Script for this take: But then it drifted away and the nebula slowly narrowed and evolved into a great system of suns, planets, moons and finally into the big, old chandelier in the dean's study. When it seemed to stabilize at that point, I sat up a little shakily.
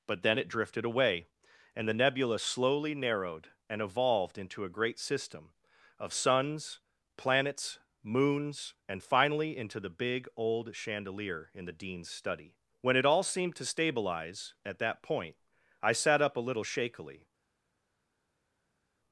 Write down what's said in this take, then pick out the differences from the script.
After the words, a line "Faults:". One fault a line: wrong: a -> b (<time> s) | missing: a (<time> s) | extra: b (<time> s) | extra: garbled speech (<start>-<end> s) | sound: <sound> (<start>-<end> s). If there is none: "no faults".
But then it drifted away and the nebula slowly narrowed and evolved into a great system of suns, planets, moons and finally into the big, old chandelier in the dean's study. When it all seemed to stabilize at that point, I sat up a little shakily.
Faults:
extra: all (13.1 s)